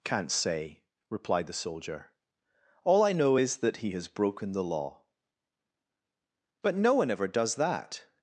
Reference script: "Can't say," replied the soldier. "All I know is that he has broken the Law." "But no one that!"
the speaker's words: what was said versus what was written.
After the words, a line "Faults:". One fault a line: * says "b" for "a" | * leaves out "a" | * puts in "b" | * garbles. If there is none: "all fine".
"Can't say," replied the soldier. "All I know is that he has broken the Law." "But no one ever does that!"
Faults:
* puts in "ever does"